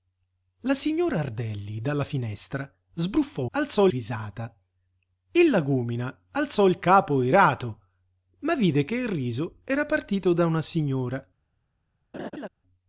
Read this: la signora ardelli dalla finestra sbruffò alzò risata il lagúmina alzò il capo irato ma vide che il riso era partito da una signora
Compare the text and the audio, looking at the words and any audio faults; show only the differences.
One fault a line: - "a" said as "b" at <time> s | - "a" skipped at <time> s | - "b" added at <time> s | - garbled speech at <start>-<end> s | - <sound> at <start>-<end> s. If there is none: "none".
- laugh at 12.1-12.5 s